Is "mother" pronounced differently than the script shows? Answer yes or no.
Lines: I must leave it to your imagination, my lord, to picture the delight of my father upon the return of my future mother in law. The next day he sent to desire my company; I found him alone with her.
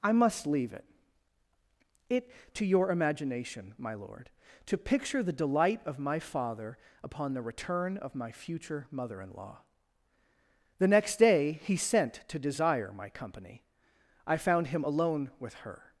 no